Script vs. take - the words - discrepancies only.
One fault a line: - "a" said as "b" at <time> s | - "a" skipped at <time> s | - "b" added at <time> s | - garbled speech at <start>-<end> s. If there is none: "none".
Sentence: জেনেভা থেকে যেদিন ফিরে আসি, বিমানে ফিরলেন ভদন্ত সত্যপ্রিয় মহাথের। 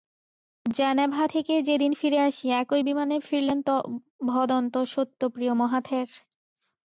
- "একই" added at 2.6 s